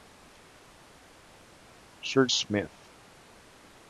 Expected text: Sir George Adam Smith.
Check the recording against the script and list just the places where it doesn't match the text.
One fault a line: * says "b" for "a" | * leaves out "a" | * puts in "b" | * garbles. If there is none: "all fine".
* leaves out "George Adam"